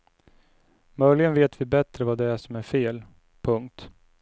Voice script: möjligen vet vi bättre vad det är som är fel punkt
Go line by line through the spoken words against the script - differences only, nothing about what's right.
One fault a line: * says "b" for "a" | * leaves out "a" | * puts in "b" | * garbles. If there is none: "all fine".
all fine